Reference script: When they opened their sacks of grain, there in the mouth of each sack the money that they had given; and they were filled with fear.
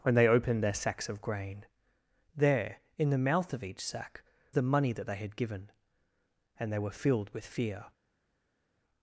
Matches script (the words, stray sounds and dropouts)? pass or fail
pass